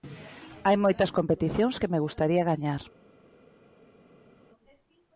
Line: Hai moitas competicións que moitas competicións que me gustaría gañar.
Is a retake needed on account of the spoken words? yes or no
yes